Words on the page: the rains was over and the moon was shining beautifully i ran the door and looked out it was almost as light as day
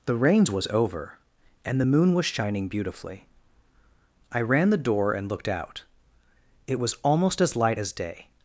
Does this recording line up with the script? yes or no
yes